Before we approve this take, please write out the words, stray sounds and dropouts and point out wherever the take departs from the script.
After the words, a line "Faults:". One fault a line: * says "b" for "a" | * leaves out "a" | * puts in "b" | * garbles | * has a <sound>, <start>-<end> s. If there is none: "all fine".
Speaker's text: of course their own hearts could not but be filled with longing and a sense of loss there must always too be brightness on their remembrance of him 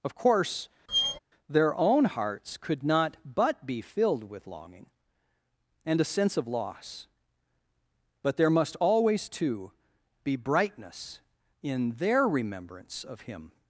of course their own hearts could not but be filled with longing and a sense of loss but there must always too be brightness in their remembrance of him
Faults:
* has a squeak, 0.9-1.2 s
* puts in "but"
* says "in" for "on"